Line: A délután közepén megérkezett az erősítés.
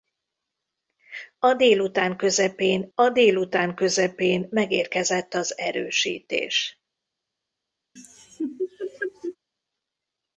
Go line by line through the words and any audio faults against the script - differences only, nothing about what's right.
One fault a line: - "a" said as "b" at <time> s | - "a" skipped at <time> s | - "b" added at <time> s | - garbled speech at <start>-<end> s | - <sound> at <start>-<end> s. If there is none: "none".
- "a délután közepén" added at 2.9 s
- laugh at 8.0-9.4 s